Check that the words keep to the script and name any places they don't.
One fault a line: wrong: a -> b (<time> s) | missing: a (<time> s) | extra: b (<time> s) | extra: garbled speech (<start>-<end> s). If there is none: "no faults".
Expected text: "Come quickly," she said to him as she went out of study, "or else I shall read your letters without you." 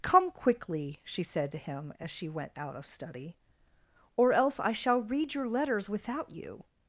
no faults